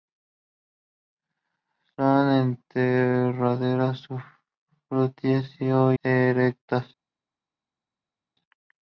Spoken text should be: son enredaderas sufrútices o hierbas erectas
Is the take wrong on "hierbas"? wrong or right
wrong